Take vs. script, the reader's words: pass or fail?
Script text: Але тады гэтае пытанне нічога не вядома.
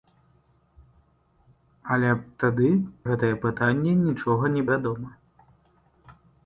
pass